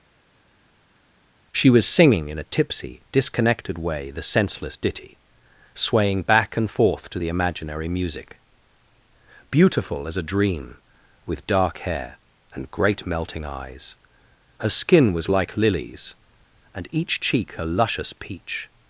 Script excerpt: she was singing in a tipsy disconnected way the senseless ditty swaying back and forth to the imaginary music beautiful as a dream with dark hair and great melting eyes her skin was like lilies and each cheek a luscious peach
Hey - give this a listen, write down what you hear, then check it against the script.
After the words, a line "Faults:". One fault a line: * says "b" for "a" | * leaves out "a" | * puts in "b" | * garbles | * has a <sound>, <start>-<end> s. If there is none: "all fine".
she was singing in a tipsy disconnected way the senseless ditty swaying back and forth to the imaginary music beautiful as a dream with dark hair and great melting eyes her skin was like lilies and each cheek a luscious peach
Faults:
all fine